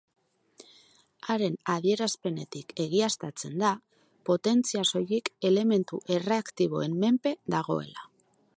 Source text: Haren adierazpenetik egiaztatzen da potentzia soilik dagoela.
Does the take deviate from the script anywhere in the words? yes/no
yes